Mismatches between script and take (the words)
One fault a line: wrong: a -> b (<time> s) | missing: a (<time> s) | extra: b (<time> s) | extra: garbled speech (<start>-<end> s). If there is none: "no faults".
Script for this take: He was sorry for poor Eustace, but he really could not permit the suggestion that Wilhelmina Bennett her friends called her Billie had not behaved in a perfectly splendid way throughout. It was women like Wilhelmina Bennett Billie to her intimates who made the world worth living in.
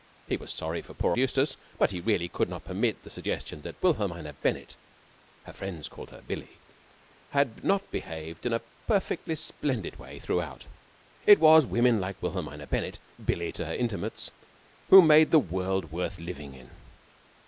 no faults